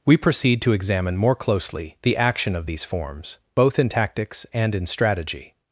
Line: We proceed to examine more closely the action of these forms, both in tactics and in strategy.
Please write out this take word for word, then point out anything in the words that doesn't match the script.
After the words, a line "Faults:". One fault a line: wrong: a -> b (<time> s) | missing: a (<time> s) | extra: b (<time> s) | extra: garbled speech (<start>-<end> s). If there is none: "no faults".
We proceed to examine more closely the action of these forms, both in tactics and in strategy.
Faults:
no faults